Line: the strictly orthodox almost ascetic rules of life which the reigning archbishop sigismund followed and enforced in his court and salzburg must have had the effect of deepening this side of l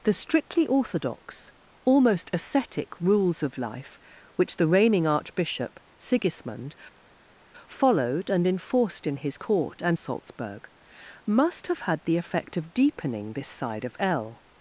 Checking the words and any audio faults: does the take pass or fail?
pass